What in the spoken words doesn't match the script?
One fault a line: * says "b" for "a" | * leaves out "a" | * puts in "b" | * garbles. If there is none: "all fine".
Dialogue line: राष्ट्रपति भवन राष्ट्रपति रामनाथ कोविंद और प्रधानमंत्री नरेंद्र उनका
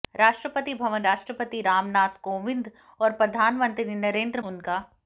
all fine